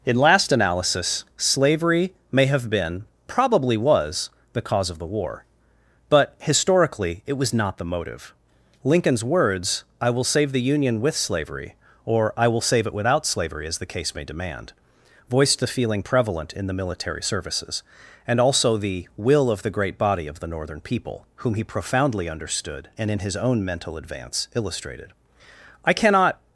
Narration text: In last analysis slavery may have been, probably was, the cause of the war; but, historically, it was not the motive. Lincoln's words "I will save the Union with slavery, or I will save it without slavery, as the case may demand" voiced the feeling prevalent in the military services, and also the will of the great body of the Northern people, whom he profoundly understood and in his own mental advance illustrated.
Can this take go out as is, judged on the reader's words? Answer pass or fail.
fail